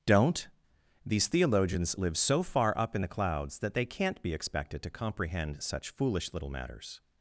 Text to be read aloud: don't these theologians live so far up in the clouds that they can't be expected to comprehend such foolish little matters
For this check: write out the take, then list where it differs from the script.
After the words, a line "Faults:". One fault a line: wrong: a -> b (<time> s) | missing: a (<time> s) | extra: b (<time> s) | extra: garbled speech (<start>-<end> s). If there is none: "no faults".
don't these theologians live so far up in the clouds that they can't be expected to comprehend such foolish little matters
Faults:
no faults